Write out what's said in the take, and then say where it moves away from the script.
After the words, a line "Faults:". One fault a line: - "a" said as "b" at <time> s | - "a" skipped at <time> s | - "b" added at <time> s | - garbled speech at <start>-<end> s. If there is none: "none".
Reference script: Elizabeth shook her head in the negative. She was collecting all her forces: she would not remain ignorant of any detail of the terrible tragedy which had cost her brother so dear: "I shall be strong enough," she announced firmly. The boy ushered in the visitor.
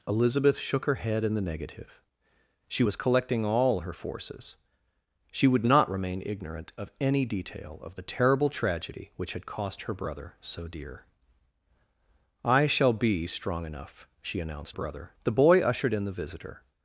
Elizabeth shook her head in the negative. She was collecting all her forces: she would not remain ignorant of any detail of the terrible tragedy which had cost her brother so dear: "I shall be strong enough," she announced brother. The boy ushered in the visitor.
Faults:
- "firmly" said as "brother" at 14.7 s